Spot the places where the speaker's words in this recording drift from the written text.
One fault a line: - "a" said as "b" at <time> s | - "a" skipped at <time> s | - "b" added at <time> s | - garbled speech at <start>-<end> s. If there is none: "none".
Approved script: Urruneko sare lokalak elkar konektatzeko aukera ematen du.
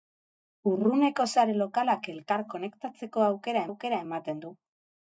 - "aukera" added at 3.7 s